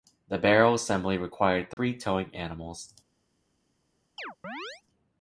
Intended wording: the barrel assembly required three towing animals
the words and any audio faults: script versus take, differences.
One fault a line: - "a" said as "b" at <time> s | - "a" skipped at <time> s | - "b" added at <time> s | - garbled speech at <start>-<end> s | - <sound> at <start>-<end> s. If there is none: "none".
- dropout at 1.7-1.8 s
- chirp at 4.2-4.8 s